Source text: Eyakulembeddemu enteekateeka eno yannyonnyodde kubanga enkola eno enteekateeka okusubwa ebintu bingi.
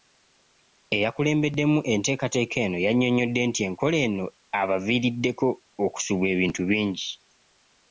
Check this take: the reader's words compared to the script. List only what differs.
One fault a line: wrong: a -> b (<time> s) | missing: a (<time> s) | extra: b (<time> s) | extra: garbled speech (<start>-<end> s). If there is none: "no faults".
wrong: kubanga -> nti (3.5 s)
wrong: enteekateeka -> abaviiriddeko (4.6 s)